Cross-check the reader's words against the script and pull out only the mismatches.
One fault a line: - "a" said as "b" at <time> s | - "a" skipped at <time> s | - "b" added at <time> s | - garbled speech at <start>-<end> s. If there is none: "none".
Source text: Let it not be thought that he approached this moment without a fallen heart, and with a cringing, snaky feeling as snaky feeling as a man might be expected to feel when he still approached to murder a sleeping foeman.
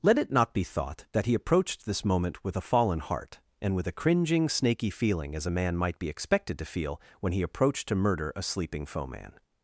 - "without" said as "with" at 2.4 s
- "snaky feeling as" skipped at 5.5 s
- "still" skipped at 7.4 s